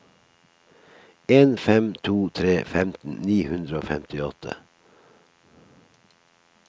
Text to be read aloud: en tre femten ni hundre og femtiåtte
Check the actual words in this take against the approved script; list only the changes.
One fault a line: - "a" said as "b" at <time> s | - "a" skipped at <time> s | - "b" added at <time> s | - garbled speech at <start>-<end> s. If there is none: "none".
- "fem to" added at 1.6 s